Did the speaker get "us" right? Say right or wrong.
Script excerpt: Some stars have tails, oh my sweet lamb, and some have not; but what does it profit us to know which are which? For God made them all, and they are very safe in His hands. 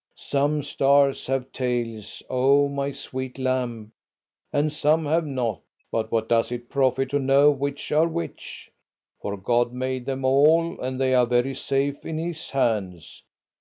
wrong